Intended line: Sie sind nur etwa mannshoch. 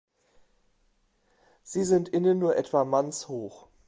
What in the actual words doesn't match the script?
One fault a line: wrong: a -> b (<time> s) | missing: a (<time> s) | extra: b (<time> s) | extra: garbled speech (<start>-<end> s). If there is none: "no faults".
extra: innen (2.1 s)